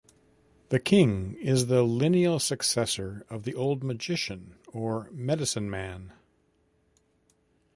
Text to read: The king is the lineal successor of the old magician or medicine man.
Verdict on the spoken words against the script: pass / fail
pass